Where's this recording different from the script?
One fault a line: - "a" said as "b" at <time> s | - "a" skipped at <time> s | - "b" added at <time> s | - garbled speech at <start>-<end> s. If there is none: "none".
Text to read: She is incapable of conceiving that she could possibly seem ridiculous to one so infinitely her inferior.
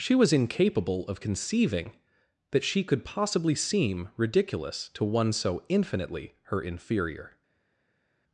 - "is" said as "was" at 0.1 s